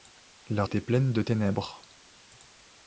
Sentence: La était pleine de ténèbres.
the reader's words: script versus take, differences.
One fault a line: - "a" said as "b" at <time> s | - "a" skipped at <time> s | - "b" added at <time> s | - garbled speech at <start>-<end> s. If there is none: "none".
none